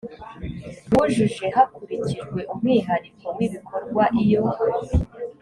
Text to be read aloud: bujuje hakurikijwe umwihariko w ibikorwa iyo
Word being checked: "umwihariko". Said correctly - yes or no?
yes